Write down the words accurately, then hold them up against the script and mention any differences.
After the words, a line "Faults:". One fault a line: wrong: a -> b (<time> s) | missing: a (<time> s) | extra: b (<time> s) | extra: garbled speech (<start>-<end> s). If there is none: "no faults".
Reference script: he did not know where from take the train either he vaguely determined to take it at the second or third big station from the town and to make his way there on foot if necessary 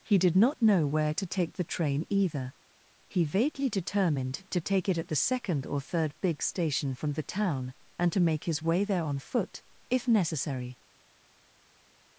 he did not know where to take the train either he vaguely determined to take it at the second or third big station from the town and to make his way there on foot if necessary
Faults:
wrong: from -> to (1.1 s)